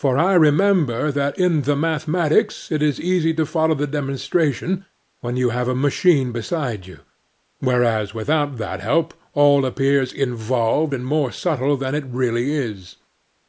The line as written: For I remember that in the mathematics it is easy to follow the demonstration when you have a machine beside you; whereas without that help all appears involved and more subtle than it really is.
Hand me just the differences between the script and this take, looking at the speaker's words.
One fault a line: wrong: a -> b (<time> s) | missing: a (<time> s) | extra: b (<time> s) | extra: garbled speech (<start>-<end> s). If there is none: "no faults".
no faults